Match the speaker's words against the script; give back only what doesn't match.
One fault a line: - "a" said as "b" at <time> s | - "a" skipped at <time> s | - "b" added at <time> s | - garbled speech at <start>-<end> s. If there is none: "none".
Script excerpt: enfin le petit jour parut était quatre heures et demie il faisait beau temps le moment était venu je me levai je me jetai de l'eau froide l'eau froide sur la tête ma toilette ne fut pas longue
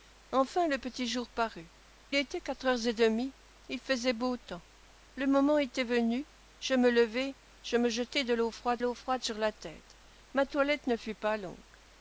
none